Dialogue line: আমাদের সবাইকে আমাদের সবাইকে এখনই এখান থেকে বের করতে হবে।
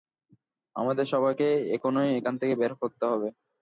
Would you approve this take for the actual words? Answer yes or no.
no